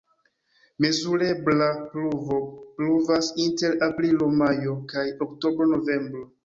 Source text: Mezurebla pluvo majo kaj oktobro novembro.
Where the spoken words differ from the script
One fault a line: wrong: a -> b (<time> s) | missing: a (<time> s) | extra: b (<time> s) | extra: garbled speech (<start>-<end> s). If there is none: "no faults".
extra: pluvas inter aprilo (2.8 s)